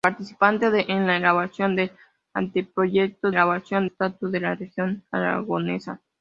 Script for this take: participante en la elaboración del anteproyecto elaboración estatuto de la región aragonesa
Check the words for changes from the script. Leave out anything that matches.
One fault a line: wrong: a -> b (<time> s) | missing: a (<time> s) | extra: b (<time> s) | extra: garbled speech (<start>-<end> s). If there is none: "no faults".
no faults